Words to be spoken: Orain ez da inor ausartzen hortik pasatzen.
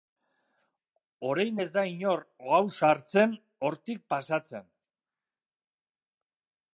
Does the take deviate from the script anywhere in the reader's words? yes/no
no